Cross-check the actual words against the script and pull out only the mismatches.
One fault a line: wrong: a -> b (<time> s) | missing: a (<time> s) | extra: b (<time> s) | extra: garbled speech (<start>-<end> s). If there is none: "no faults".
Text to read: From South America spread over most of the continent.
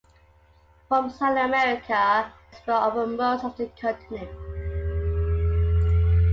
no faults